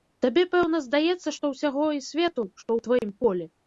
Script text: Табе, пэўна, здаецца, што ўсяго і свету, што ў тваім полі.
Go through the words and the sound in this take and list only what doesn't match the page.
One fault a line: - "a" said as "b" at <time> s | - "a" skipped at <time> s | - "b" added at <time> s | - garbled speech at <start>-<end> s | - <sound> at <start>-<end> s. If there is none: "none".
- dropout at 3.0-3.0 s